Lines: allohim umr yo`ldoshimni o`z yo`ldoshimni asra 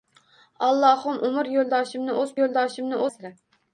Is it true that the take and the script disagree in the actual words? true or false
false